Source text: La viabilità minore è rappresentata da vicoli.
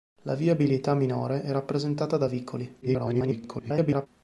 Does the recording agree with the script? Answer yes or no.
no